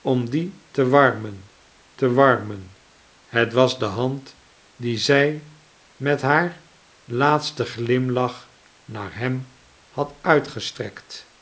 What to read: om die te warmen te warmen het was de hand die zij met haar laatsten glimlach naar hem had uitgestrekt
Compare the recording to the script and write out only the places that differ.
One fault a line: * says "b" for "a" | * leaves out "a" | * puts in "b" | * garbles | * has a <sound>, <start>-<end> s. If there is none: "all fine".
all fine